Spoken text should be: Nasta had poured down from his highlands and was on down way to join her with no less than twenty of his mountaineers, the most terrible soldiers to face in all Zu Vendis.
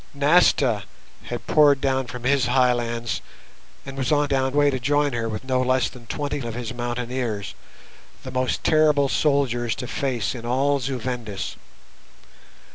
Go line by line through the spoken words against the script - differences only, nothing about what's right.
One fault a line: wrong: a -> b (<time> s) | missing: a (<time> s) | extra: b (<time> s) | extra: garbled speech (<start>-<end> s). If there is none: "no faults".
no faults